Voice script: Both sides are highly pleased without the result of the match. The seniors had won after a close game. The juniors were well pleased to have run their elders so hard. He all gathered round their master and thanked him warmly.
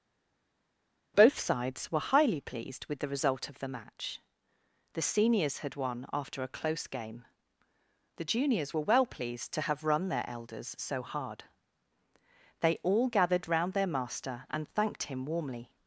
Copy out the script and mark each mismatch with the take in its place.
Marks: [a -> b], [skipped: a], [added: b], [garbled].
Both sides [are -> were] highly pleased [without -> with] the result of the match. The seniors had won after a close game. The juniors were well pleased to have run their elders so hard. [He -> They] all gathered round their master and thanked him warmly.